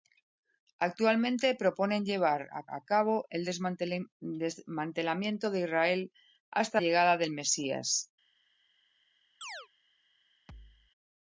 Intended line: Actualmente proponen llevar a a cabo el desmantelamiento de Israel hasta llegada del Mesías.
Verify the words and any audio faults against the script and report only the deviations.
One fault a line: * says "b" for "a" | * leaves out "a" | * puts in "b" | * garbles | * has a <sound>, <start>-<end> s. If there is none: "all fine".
* has a chirp, 9.4-9.7 s
* has a thud, 10.5-10.9 s